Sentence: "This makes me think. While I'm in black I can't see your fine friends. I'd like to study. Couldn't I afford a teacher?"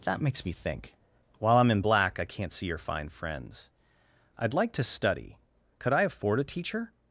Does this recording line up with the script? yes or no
no